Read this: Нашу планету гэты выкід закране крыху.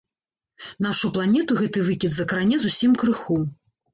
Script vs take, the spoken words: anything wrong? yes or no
yes